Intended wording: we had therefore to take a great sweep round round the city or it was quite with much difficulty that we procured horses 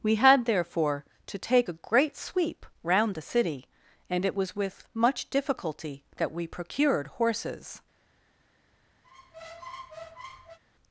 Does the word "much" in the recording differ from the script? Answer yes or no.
no